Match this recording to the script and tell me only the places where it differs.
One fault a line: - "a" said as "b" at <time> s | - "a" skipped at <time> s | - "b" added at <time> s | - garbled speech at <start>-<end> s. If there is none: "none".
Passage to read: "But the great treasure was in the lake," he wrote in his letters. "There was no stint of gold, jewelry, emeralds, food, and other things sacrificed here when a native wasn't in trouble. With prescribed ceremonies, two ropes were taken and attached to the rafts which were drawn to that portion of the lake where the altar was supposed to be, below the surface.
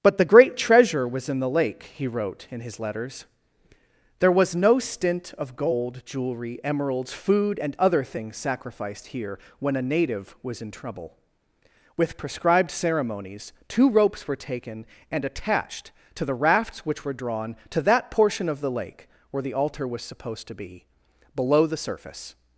- "wasn't" said as "was" at 10.4 s